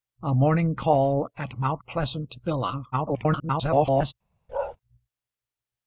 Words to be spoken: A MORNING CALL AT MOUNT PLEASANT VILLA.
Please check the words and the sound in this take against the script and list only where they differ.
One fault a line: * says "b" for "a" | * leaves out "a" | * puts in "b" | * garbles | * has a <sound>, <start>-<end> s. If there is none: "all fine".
* garbles
* has a bark, 4.5-4.8 s